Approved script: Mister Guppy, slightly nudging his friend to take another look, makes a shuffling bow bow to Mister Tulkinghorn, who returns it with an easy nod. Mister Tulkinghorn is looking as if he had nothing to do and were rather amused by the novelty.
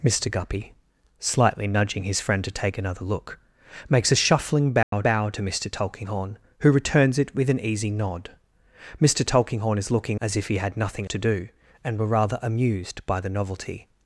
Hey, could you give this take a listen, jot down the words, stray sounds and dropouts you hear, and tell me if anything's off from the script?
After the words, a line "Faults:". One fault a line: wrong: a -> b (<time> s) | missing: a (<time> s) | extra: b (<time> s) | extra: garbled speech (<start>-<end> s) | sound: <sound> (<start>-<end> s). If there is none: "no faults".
Mister Guppy, slightly nudging his friend to take another look, makes a shuffling bow bow to Mister Tulkinghorn, who returns it with an easy nod. Mister Tulkinghorn is looking as if he had nothing to do and were rather amused by the novelty.
Faults:
sound: dropout (4.8-4.9 s)